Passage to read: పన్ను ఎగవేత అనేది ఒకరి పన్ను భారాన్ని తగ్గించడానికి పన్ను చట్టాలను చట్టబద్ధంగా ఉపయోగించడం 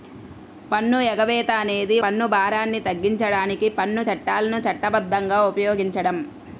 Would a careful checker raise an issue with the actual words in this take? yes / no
yes